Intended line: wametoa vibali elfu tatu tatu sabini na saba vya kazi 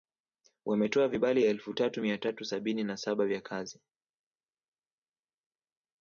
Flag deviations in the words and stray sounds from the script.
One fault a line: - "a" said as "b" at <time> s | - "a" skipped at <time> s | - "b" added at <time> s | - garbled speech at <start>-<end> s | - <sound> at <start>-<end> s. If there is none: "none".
- "mia" added at 2.0 s